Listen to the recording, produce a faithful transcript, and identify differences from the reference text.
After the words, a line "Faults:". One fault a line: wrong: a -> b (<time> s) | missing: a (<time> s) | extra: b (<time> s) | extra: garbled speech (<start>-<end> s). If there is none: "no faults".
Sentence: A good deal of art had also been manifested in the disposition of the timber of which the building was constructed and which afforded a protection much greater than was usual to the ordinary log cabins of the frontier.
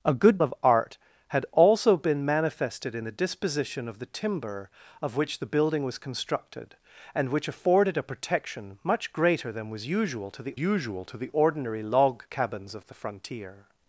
A good of art had also been manifested in the disposition of the timber of which the building was constructed and which afforded a protection much greater than was usual to the usual to the ordinary log cabins of the frontier.
Faults:
missing: deal (0.4 s)
extra: usual to the (10.6 s)